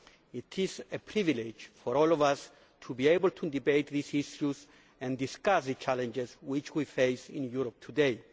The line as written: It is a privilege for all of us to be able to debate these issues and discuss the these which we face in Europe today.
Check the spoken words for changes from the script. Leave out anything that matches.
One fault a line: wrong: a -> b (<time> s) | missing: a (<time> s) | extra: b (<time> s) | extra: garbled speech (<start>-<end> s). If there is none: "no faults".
wrong: these -> challenges (5.7 s)